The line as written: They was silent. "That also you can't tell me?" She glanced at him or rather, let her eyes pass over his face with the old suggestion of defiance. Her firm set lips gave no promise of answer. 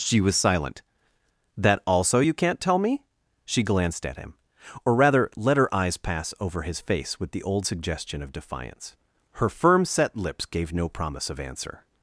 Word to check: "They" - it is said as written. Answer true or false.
false